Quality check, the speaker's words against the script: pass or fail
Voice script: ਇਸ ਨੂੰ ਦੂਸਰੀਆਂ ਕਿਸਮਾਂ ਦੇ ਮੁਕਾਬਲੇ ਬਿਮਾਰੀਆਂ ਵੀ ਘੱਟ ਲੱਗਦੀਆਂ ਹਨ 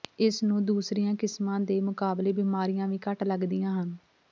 pass